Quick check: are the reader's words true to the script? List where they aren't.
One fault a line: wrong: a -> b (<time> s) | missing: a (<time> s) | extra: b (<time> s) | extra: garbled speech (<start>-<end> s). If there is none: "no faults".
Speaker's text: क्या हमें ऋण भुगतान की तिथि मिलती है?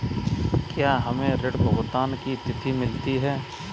no faults